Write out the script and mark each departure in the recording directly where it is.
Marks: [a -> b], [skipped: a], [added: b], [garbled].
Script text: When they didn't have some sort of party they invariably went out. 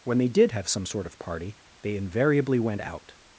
When they [didn't -> did] have some sort of party they invariably went out.